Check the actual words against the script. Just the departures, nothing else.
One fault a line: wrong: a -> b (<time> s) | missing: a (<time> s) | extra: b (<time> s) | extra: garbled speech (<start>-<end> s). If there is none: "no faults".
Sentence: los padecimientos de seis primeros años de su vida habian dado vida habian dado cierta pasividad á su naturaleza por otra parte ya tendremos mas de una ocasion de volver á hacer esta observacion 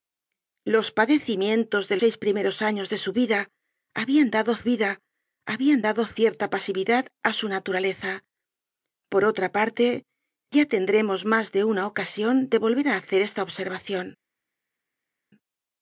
no faults